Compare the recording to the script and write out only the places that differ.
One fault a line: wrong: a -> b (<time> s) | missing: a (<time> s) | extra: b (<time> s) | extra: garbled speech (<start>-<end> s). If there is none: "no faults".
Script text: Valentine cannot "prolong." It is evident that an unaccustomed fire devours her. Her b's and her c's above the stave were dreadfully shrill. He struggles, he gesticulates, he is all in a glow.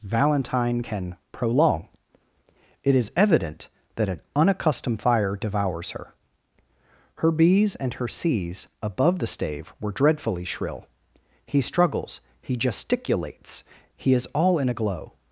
wrong: cannot -> can (0.8 s)